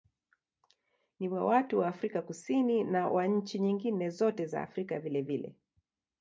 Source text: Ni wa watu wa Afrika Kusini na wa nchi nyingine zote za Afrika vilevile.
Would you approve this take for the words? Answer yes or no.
yes